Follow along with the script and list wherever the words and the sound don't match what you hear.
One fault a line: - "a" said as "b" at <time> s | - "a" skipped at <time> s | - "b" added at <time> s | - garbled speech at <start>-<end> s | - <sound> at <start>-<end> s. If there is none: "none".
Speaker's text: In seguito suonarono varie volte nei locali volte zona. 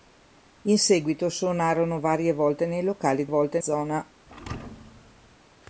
- thud at 4.3-5.4 s